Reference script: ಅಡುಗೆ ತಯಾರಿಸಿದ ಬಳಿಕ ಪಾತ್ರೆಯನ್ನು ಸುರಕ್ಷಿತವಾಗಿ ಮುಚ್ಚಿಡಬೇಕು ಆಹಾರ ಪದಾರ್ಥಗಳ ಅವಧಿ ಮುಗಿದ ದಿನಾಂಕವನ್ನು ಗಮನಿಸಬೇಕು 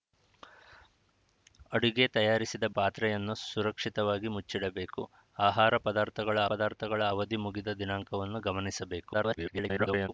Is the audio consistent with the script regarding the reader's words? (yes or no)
no